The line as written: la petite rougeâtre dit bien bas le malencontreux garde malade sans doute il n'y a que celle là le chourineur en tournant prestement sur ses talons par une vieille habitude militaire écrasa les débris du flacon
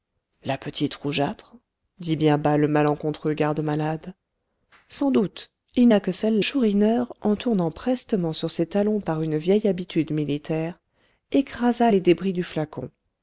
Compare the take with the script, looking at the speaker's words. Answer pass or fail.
fail